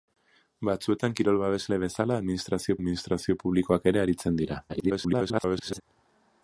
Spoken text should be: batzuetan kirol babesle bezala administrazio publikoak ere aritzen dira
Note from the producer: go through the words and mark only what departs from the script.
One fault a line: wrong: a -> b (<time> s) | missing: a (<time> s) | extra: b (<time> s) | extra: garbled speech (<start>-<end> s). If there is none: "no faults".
extra: administrazio (2.8 s)
extra: garbled speech (4.7-5.8 s)